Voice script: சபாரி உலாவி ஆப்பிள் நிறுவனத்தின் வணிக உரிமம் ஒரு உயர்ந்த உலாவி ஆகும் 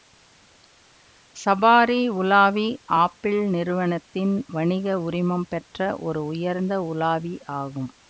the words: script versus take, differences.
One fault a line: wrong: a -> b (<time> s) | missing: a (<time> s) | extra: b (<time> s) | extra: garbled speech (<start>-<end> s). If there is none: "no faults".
extra: பெற்ற (5.5 s)